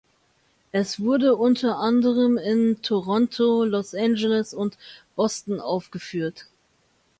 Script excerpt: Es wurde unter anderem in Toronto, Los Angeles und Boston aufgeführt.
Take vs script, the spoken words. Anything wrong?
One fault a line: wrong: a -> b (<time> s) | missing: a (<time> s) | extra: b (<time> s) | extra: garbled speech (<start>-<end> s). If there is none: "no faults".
no faults